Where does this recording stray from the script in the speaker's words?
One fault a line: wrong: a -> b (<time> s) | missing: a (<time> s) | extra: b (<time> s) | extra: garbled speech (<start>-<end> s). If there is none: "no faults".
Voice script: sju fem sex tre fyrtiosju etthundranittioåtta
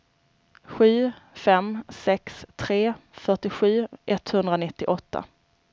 no faults